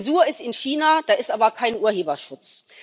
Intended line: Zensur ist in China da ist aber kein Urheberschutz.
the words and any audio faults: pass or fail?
pass